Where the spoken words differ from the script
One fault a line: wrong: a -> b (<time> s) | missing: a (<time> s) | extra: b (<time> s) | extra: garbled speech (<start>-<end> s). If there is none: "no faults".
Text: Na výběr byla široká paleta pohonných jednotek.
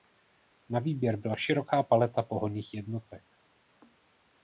no faults